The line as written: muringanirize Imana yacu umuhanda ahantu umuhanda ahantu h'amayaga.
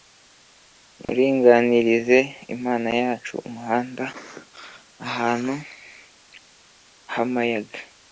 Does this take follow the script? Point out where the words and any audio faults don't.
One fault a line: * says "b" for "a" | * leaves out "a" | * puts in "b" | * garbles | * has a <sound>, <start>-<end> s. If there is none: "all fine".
* has a dropout, 1.1-1.1 s
* leaves out "umuhanda ahantu"